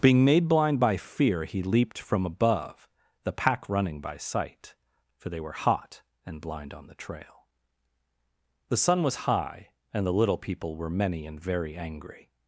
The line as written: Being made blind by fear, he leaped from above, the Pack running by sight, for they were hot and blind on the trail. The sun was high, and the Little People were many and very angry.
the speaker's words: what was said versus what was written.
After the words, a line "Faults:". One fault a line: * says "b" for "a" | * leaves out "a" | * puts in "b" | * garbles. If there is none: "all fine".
Being made blind by fear, he leaped from above, the Pack running by sight, for they were hot and blind on the trail. The sun was high, and the Little People were many and very angry.
Faults:
all fine